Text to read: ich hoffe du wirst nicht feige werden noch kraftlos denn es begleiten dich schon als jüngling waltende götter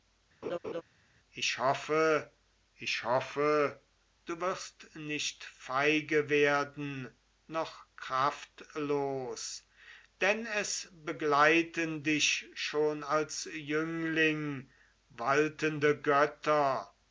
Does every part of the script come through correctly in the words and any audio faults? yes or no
no